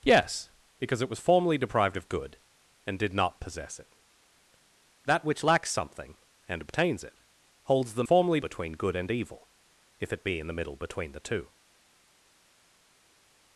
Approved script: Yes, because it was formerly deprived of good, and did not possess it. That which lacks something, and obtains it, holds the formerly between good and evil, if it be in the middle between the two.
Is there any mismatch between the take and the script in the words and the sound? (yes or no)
no